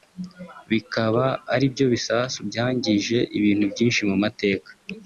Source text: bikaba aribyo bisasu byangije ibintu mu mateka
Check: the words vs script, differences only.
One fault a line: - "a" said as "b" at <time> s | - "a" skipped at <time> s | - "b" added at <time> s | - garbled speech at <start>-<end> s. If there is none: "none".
- "byinshi" added at 3.7 s